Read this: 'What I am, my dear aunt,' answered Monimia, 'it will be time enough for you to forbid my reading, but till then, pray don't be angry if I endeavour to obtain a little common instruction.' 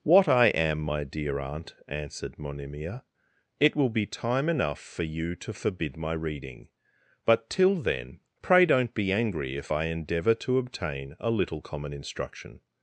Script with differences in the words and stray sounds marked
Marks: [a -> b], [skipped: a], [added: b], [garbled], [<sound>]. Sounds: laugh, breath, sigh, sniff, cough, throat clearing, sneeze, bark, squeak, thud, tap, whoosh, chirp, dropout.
'What I am, my dear aunt,' answered Monimia, 'it will be time enough for you to forbid my reading, but till then, pray don't be angry if I endeavour to obtain a little common instruction.'